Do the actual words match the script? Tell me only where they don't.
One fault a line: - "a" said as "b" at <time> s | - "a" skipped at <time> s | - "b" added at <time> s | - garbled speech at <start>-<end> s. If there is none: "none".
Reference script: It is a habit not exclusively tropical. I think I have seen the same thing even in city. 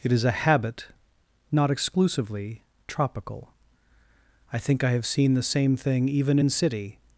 none